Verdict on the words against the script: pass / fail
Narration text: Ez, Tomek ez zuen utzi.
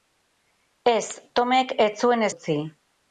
pass